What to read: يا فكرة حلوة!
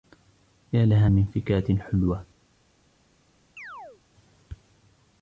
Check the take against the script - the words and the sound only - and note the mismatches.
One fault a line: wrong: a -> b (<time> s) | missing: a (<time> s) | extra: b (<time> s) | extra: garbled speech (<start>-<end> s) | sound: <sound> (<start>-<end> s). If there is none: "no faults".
extra: لها من (0.8 s)
sound: chirp (3.6-4.0 s)